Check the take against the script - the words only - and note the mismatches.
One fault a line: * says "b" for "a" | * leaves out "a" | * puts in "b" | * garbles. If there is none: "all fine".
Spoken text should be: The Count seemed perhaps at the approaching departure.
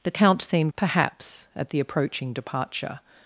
all fine